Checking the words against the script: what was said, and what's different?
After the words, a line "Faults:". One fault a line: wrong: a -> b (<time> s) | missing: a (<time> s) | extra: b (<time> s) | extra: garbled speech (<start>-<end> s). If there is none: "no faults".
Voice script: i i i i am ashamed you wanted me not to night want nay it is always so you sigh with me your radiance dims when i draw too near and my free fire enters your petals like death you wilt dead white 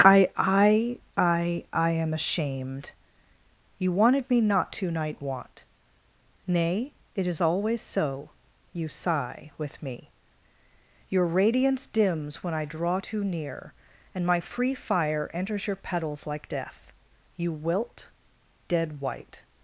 i i i i am ashamed you wanted me not to night want nay it is always so you sigh with me your radiance dims when i draw too near and my free fire enters your petals like death you wilt dead white
Faults:
no faults